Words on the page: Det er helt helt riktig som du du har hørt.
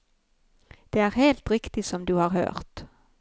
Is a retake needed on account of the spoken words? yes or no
yes